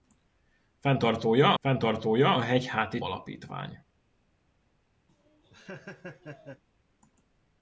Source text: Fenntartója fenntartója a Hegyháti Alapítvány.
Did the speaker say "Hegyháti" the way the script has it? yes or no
yes